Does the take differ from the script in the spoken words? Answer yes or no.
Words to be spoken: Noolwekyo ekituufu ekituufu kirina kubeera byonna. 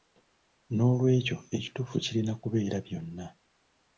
yes